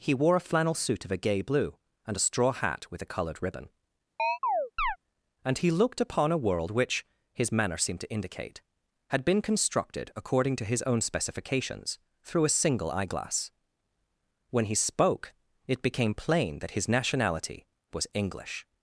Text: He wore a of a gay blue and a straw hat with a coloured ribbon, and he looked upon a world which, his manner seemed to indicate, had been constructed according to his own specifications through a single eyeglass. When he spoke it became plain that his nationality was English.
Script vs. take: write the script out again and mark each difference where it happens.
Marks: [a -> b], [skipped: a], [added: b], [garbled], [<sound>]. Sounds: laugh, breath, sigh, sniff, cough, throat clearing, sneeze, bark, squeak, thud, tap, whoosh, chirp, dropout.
He wore a [added: flannel suit] of a gay blue and a straw hat with a coloured ribbon, [chirp] and he looked upon a world which, his manner seemed to indicate, had been constructed according to his own specifications through a single eyeglass. When he spoke it became plain that his nationality was English.